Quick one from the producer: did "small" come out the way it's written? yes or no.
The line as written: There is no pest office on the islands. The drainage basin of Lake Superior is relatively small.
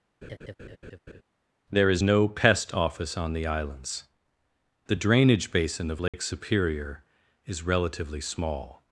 yes